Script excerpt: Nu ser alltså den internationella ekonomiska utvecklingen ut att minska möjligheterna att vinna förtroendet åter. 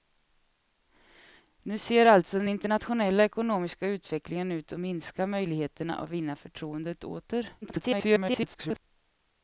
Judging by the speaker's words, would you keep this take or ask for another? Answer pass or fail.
fail